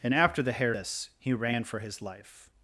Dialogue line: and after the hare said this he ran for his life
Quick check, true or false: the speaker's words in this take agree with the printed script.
false